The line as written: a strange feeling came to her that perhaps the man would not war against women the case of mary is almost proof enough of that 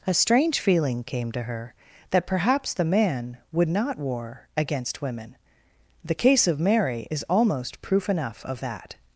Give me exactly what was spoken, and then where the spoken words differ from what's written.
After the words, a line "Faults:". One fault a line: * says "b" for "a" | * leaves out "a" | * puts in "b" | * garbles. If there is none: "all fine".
a strange feeling came to her that perhaps the man would not war against women the case of mary is almost proof enough of that
Faults:
all fine